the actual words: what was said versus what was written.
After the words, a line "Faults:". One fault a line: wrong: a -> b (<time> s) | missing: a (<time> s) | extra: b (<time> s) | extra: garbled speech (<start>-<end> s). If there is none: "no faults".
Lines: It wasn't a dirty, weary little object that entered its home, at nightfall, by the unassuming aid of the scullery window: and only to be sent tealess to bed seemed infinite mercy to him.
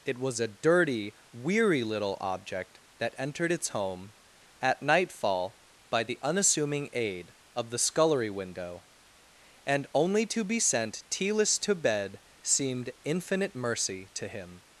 It was a dirty, weary little object that entered its home, at nightfall, by the unassuming aid of the scullery window: and only to be sent tealess to bed seemed infinite mercy to him.
Faults:
wrong: wasn't -> was (0.2 s)